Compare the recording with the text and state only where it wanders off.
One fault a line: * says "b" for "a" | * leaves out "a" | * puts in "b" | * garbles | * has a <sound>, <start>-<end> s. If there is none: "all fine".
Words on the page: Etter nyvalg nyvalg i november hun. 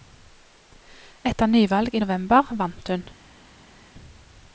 * leaves out "nyvalg"
* puts in "vant"